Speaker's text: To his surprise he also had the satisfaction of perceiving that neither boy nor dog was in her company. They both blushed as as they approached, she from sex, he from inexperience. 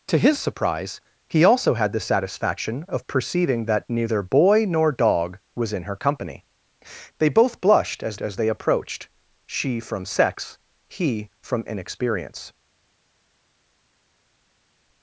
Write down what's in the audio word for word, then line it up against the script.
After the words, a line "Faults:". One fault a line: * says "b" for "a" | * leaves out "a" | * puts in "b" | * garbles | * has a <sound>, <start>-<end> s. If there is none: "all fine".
To his surprise he also had the satisfaction of perceiving that neither boy nor dog was in her company. They both blushed as as they approached, she from sex, he from inexperience.
Faults:
all fine